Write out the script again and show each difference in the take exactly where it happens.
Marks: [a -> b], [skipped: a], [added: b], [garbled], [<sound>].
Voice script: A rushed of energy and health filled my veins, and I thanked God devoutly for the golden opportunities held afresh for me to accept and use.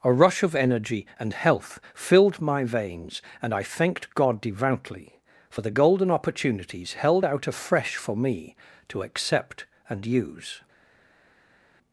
A [rushed -> rush] of energy and health filled my veins, and I thanked God devoutly for the golden opportunities held [added: out] afresh for me to accept and use.